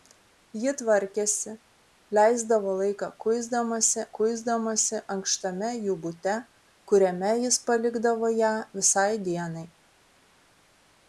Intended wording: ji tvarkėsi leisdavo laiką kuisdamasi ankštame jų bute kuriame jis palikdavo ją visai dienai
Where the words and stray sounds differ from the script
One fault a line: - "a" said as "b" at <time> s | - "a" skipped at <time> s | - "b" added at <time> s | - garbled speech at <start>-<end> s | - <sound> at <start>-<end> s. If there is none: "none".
- "kuisdamasi" added at 4.2 s